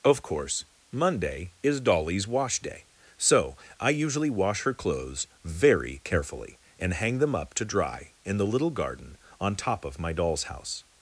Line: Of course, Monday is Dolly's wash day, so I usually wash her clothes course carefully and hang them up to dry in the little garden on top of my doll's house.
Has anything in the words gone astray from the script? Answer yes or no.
yes